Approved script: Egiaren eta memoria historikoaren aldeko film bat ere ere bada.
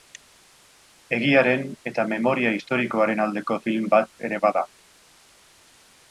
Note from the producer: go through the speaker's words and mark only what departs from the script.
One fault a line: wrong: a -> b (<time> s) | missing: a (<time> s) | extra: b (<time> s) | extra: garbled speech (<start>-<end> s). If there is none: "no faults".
missing: ere (4.4 s)